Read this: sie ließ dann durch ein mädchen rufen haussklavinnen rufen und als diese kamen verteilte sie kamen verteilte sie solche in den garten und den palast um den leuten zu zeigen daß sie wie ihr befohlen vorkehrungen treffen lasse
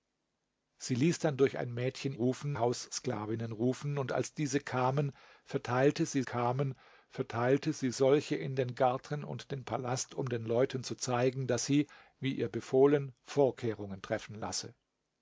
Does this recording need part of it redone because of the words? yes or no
no